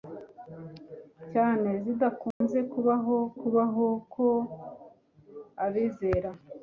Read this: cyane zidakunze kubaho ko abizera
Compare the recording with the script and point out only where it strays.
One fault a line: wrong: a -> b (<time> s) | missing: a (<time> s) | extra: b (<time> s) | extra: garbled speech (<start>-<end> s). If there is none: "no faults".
extra: kubaho (3.4 s)